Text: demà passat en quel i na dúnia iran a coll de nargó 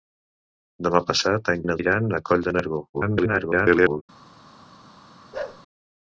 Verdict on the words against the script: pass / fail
fail